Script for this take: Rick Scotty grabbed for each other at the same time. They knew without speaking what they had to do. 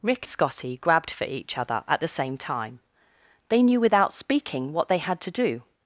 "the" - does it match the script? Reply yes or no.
yes